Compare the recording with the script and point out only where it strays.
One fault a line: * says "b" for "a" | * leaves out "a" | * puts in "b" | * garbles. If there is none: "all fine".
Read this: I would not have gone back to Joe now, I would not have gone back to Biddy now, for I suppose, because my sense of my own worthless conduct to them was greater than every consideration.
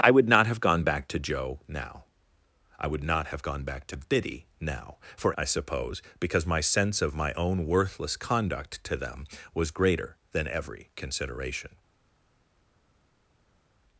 all fine